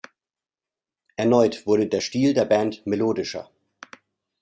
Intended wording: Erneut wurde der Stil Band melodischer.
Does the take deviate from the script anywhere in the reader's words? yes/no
yes